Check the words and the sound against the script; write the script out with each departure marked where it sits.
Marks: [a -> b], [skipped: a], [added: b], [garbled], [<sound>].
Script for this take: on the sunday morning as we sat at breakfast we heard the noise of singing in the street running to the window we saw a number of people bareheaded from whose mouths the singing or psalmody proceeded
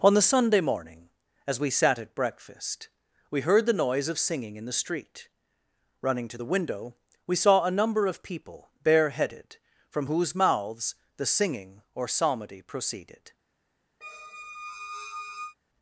on the sunday morning as we sat at breakfast we heard the noise of singing in the street running to the window we saw a number of people bareheaded from whose mouths the singing or psalmody proceeded [squeak]